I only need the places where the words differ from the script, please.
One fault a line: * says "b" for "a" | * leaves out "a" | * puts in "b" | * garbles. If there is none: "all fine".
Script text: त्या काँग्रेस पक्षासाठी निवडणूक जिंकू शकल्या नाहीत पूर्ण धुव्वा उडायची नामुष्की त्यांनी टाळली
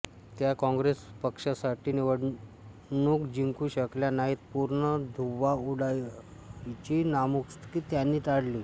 all fine